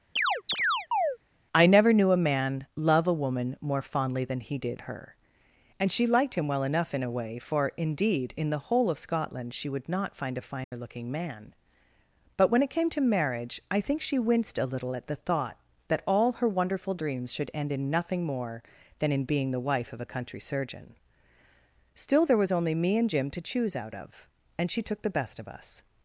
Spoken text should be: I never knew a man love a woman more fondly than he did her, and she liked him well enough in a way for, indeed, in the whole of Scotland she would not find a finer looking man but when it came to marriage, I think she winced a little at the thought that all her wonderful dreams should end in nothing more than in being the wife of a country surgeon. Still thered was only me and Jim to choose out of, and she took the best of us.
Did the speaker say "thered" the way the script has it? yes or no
no